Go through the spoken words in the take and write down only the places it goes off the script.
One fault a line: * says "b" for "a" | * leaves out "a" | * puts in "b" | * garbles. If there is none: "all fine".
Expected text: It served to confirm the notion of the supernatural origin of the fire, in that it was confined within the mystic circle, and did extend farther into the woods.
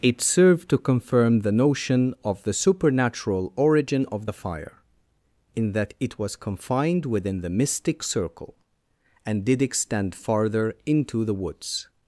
all fine